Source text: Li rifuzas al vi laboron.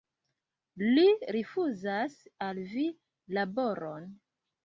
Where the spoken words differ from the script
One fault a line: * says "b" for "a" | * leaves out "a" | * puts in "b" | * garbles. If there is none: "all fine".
all fine